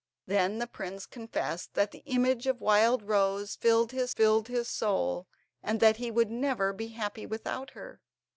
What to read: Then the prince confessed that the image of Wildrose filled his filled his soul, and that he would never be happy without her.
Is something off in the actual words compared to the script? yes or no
no